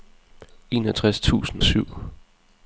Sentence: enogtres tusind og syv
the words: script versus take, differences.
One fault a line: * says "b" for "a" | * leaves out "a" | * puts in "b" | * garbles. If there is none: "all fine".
* leaves out "og"